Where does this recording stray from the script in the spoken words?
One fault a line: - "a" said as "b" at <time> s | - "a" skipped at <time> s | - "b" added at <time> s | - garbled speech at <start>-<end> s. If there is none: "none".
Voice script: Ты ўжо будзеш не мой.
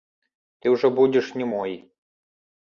none